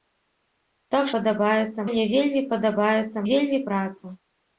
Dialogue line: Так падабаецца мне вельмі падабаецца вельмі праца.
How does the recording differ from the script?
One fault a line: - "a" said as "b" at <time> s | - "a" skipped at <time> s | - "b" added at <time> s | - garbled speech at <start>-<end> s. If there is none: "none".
none